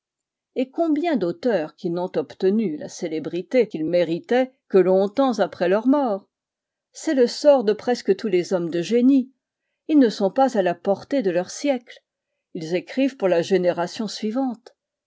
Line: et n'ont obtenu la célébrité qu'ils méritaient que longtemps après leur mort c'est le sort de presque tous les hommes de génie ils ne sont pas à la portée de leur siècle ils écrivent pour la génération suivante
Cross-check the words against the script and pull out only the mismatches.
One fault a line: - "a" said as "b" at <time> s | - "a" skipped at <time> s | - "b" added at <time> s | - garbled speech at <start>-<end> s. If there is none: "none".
- "combien d'auteurs qui" added at 0.7 s